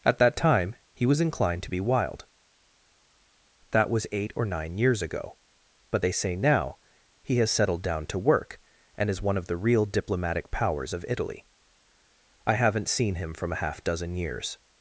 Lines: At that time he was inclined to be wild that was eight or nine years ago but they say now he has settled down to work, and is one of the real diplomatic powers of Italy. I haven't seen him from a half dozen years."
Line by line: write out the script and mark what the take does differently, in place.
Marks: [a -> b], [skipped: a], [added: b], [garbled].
At that time he was inclined to be wild that was eight or nine years ago but they say now he has settled down to work, and is one of the real diplomatic powers of Italy. I haven't seen him from a half dozen years."